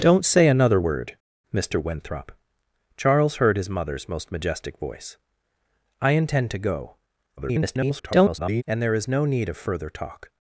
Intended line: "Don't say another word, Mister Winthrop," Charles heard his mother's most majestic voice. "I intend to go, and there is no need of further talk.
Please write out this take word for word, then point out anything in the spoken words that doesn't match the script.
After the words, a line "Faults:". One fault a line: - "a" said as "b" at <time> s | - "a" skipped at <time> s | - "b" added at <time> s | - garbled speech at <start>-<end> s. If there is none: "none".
"Don't say another word, Mister Winthrop," Charles heard his mother's most majestic voice. "I intend to go, [garbled] and there is no need of further talk.
Faults:
- garbled speech at 7.4-8.6 s